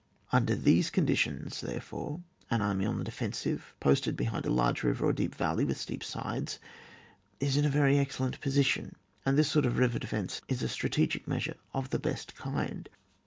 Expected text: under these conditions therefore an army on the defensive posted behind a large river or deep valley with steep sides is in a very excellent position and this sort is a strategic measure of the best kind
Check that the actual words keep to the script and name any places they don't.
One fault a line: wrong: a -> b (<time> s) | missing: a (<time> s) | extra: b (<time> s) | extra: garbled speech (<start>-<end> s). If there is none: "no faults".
extra: of river defence (9.6 s)